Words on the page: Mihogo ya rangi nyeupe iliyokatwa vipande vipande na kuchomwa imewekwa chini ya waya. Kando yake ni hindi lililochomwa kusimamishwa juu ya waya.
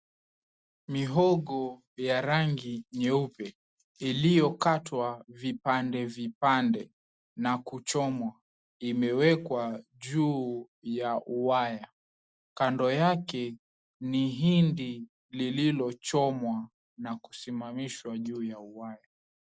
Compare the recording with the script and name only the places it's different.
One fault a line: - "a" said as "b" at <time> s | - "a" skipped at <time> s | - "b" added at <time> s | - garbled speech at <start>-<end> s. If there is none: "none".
- "chini" said as "juu" at 10.0 s
- "na" added at 17.0 s